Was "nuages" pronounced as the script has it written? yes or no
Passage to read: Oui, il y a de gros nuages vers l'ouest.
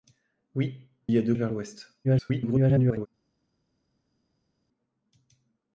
no